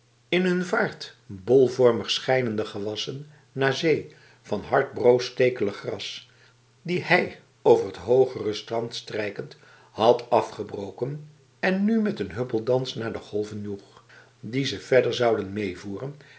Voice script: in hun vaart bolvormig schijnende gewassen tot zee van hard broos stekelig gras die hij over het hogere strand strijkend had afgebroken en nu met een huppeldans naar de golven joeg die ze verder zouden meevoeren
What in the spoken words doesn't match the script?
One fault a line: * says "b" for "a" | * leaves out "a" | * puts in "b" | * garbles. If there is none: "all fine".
* says "naar" for "tot"